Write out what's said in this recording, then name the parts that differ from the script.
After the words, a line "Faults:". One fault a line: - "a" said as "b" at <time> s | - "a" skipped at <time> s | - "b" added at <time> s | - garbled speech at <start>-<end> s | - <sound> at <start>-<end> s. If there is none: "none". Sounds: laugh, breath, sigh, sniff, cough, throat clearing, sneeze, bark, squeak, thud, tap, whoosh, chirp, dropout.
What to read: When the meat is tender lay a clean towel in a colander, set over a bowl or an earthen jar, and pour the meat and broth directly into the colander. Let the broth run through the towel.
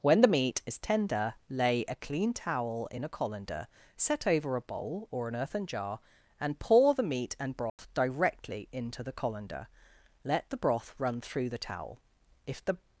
When the meat is tender lay a clean towel in a colander, set over a bowl or an earthen jar, and pour the meat and broth directly into the colander. Let the broth run through the towel. If the
Faults:
- dropout at 7.7-7.8 s
- "If the" added at 12.5 s